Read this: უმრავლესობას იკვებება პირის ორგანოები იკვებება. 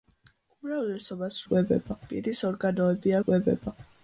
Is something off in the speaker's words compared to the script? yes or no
no